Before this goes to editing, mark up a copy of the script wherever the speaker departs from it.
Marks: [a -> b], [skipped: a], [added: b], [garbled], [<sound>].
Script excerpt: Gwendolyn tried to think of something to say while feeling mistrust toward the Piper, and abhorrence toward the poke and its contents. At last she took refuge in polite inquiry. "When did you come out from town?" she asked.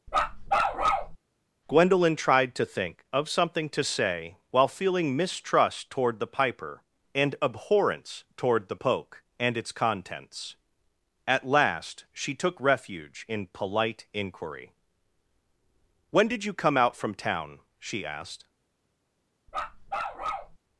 [bark] Gwendolyn tried to think of something to say while feeling mistrust toward the Piper, and abhorrence toward the poke and its contents. At last she took refuge in polite inquiry. "When did you come out from town?" she asked. [bark]